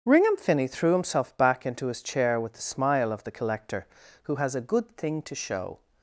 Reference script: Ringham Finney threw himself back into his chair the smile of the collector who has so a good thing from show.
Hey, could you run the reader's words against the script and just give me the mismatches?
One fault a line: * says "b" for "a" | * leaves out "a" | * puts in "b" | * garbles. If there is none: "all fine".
* puts in "with"
* leaves out "so"
* says "to" for "from"